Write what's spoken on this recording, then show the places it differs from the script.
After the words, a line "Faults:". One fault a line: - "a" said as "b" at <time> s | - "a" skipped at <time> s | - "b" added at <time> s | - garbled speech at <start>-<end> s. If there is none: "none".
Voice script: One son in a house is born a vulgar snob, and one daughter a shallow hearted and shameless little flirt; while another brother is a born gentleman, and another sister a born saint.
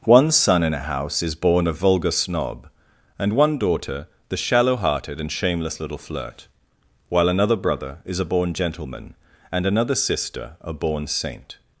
One son in a house is born a vulgar snob, and one daughter the shallow hearted and shameless little flirt; while another brother is a born gentleman, and another sister a born saint.
Faults:
- "a" said as "the" at 4.3 s